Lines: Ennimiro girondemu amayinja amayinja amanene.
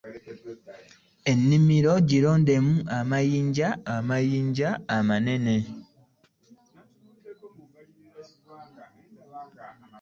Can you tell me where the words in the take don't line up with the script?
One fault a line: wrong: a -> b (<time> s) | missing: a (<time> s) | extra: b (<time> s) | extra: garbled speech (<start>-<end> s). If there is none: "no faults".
no faults